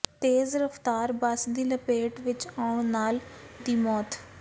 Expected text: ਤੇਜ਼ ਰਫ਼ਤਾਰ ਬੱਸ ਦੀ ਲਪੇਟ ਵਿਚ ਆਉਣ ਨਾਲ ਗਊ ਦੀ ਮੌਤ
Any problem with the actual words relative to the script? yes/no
yes